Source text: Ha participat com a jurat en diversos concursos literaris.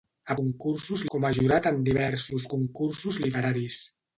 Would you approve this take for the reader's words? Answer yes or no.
no